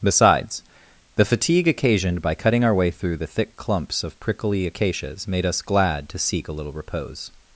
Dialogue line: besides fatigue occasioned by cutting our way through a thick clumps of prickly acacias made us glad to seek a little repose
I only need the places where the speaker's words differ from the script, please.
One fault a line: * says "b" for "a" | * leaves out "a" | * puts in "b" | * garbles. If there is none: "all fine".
* puts in "the"
* says "the" for "a"